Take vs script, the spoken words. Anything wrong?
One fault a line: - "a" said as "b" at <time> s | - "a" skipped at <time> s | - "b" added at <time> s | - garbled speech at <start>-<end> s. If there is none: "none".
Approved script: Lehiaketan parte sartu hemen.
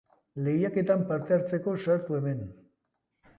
- "hartzeko" added at 1.4 s